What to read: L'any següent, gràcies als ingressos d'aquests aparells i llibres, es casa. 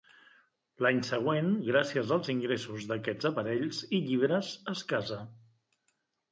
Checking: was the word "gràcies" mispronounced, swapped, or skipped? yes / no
no